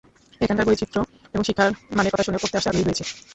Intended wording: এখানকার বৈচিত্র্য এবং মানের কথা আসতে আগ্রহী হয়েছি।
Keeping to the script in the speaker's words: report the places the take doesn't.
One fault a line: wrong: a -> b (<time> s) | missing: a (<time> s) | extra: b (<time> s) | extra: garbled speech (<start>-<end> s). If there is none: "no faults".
extra: শিক্ষার (1.4 s)
extra: শুনে পড়তে (2.2 s)